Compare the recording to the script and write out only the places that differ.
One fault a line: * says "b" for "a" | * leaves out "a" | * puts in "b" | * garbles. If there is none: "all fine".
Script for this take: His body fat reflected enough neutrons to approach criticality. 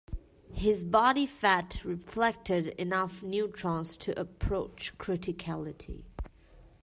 all fine